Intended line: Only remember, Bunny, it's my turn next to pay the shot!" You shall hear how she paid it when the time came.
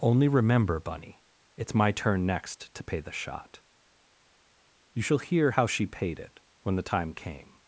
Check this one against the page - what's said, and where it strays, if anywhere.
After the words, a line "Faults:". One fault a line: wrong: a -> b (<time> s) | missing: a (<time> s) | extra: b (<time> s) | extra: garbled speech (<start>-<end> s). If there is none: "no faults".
Only remember, Bunny, it's my turn next to pay the shot!" You shall hear how she paid it when the time came.
Faults:
no faults